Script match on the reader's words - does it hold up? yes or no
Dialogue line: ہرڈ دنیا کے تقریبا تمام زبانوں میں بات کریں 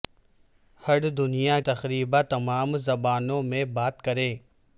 no